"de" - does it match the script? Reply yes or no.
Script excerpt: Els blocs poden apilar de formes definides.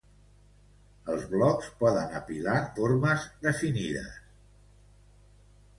no